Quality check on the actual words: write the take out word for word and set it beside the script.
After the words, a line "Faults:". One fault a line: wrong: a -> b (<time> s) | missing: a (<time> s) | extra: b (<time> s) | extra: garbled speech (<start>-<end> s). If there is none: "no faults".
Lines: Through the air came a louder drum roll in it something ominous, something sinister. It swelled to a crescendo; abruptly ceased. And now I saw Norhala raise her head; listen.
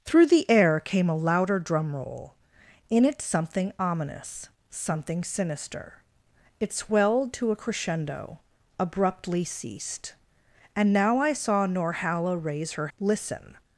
Through the air came a louder drum roll in it something ominous, something sinister. It swelled to a crescendo; abruptly ceased. And now I saw Norhala raise her; listen.
Faults:
missing: head (12.9 s)